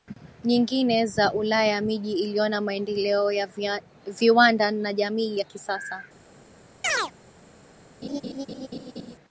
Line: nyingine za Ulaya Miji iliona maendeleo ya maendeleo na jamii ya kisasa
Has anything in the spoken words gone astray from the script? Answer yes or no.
yes